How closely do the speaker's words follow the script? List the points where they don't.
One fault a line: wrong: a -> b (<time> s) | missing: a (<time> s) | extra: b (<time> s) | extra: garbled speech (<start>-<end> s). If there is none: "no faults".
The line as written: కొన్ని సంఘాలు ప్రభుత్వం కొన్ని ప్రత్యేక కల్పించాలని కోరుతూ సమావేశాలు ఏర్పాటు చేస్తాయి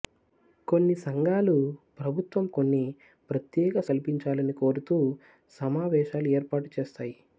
no faults